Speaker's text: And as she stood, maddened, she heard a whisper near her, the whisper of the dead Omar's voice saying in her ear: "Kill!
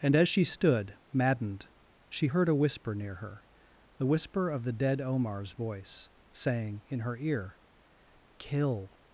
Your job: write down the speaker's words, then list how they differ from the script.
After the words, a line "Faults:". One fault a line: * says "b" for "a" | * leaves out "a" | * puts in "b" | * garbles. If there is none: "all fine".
And as she stood, maddened, she heard a whisper near her, the whisper of the dead Omar's voice saying in her ear: "Kill!
Faults:
all fine